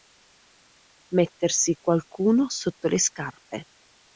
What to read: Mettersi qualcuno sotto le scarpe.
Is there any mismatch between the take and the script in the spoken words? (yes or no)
no